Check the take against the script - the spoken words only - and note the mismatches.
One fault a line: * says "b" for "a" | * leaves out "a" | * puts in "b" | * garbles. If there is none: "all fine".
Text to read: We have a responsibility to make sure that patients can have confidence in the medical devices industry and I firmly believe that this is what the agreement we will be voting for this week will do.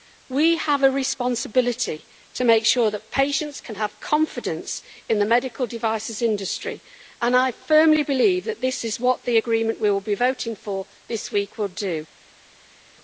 all fine